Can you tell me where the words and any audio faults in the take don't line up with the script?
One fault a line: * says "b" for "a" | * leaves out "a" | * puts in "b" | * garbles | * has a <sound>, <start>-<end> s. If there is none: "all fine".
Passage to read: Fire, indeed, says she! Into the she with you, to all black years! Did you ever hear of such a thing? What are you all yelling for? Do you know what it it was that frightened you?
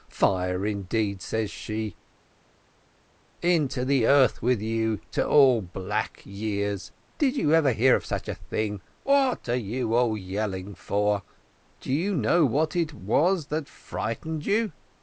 * says "earth" for "she"
* leaves out "it"